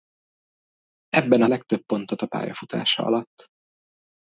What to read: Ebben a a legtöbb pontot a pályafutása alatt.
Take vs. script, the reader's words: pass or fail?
pass